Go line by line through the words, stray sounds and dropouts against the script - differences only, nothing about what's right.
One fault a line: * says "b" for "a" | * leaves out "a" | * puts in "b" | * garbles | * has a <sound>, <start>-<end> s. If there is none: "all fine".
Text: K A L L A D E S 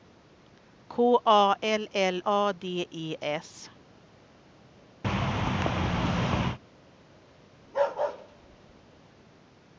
* has a thud, 5.0-6.6 s
* has a bark, 7.6-9.0 s